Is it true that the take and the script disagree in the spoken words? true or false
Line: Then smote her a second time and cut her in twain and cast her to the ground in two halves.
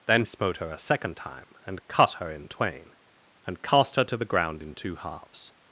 false